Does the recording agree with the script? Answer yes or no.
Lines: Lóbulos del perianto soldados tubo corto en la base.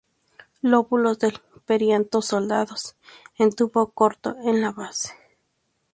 no